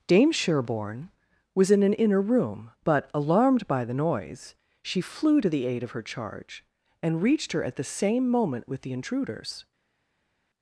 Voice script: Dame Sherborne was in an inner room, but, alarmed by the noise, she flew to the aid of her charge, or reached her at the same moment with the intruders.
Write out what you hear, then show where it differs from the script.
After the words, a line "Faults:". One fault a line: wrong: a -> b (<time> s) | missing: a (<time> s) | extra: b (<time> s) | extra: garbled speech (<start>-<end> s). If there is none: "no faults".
Dame Sherborne was in an inner room, but, alarmed by the noise, she flew to the aid of her charge, and reached her at the same moment with the intruders.
Faults:
wrong: or -> and (7.0 s)